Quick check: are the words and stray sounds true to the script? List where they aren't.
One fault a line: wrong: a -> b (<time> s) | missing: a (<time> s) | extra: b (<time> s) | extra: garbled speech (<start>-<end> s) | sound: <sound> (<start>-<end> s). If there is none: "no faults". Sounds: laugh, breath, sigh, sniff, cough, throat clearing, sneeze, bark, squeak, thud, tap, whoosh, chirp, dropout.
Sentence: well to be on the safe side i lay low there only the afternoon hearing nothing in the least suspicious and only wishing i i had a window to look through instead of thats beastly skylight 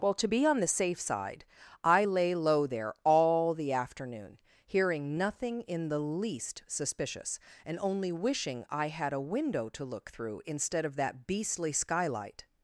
wrong: only -> all (3.0 s)
missing: i (8.9 s)
wrong: thats -> that (11.0 s)